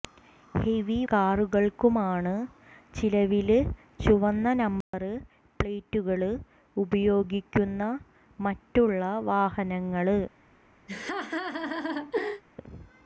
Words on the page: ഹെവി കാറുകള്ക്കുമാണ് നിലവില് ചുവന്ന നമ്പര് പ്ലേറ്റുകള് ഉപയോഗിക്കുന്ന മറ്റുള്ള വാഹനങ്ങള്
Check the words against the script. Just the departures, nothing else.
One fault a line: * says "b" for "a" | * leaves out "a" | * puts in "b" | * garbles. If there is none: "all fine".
all fine